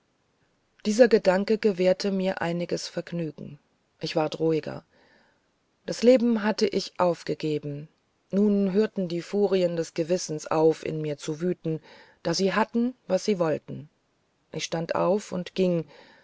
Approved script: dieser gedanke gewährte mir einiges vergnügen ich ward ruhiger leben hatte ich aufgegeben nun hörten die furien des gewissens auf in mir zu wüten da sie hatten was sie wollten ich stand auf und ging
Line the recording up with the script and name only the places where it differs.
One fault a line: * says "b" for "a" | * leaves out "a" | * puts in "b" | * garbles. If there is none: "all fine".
* puts in "das"